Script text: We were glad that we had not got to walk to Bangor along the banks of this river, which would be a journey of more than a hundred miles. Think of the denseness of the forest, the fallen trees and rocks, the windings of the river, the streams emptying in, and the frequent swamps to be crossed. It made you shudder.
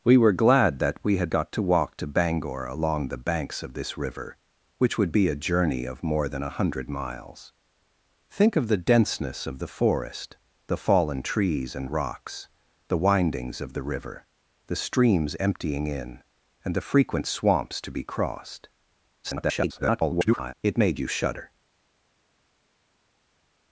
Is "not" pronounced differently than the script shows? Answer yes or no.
yes